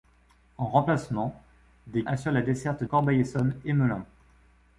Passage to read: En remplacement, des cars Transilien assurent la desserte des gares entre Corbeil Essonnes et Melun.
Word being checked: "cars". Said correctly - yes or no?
no